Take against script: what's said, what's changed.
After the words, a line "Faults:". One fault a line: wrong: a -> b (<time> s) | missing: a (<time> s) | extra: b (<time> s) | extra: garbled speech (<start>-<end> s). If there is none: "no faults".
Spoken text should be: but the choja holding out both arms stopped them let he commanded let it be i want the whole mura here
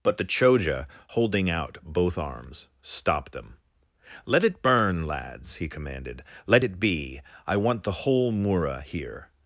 but the choja holding out both arms stopped them let it burn lads he commanded let it be i want the whole mura here
Faults:
extra: it burn lads (4.4 s)